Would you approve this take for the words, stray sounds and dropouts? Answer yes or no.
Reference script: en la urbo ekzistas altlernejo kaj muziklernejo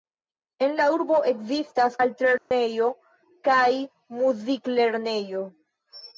no